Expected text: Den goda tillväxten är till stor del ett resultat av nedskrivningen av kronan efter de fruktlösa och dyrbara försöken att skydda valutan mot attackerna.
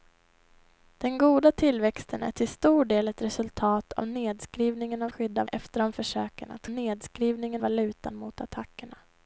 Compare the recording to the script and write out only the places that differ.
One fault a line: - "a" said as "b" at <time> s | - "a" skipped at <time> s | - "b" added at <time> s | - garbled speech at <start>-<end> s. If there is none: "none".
- "kronan" said as "skydda" at 5.1 s
- "fruktlösa och dyrbara" skipped at 5.9 s
- "skydda" said as "nedskrivningen" at 6.7 s